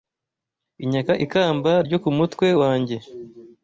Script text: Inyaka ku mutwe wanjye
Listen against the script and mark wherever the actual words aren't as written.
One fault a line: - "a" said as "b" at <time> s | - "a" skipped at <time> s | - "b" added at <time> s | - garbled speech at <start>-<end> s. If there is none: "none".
- "ikamba ryo" added at 1.2 s